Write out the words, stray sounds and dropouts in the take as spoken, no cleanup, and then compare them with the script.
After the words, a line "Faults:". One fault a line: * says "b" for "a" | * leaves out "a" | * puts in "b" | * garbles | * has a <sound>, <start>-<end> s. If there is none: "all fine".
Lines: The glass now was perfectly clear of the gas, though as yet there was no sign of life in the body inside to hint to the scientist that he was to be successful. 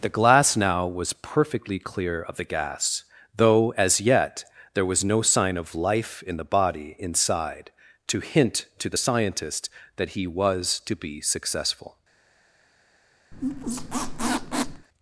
The glass now was perfectly clear of the gas, though as yet there was no sign of life in the body inside to hint to the scientist that he was to be successful.
Faults:
* has a squeak, 13.3-14.9 s